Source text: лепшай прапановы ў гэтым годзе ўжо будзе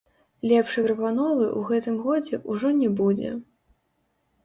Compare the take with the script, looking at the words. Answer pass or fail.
fail